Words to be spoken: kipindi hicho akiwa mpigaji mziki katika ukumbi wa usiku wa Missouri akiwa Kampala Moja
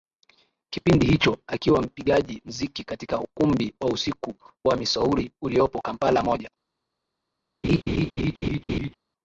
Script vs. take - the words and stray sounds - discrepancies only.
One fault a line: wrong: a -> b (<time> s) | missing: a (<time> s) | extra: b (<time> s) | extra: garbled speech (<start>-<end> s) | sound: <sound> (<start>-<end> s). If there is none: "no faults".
wrong: akiwa -> uliopo (5.4 s)
sound: laugh (7.6-8.9 s)